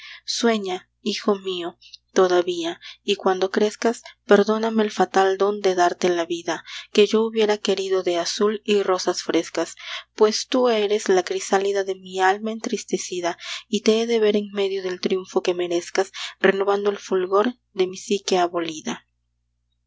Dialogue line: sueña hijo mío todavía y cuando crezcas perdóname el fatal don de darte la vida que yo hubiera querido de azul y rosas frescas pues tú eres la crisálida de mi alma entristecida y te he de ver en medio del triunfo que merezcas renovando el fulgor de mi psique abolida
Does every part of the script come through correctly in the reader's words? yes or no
yes